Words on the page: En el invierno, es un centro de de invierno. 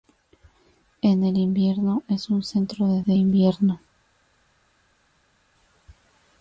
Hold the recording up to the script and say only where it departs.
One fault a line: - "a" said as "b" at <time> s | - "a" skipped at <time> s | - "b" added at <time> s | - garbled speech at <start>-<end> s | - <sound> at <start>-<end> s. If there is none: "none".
none